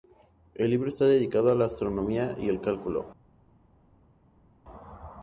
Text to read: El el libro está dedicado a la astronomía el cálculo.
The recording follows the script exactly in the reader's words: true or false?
false